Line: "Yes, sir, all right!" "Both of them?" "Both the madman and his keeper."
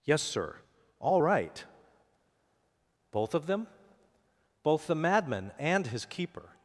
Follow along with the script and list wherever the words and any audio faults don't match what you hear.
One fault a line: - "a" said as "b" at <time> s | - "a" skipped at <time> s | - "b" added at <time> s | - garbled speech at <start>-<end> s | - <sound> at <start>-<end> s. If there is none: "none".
none